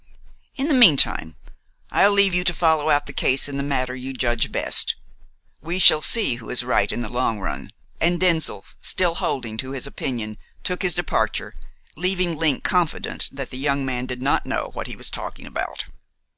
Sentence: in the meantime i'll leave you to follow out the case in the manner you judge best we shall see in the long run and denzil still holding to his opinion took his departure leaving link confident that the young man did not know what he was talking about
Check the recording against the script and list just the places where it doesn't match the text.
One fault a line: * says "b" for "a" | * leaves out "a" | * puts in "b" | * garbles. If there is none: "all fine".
* puts in "who is right"